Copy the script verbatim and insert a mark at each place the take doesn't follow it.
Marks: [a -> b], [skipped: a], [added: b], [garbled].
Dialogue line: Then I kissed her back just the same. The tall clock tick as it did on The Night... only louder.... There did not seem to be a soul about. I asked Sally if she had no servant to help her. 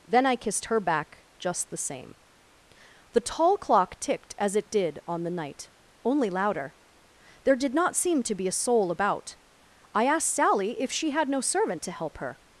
Then I kissed her back just the same. The tall clock [tick -> ticked] as it did on The Night... only louder.... There did not seem to be a soul about. I asked Sally if she had no servant to help her.